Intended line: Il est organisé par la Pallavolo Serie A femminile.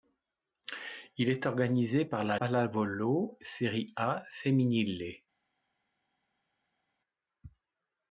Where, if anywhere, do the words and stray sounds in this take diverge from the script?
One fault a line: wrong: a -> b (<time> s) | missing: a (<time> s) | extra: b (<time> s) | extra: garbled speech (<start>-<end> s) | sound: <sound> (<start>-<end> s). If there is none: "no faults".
no faults